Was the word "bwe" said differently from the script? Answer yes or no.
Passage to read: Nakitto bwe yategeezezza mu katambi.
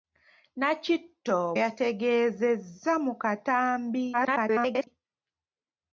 yes